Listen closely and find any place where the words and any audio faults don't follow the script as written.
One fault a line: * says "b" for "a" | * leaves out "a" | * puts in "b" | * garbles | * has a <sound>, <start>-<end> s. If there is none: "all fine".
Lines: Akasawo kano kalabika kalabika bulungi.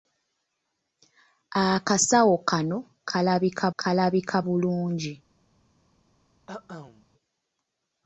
* has a cough, 6.5-7.1 s